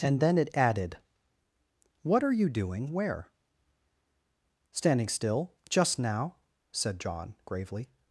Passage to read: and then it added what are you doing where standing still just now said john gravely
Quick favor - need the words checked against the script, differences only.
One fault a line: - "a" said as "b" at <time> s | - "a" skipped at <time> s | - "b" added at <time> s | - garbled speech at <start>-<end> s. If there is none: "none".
none